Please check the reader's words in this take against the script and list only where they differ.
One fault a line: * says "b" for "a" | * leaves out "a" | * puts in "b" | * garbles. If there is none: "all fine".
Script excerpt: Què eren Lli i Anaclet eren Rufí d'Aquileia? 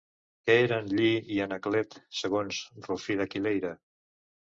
* says "segons" for "eren"